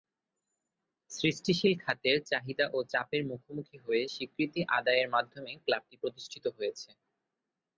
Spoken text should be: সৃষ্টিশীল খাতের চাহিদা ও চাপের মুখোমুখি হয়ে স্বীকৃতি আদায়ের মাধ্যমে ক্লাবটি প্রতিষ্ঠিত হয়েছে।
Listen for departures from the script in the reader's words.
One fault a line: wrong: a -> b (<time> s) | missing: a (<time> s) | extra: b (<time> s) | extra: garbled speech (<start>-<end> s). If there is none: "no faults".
no faults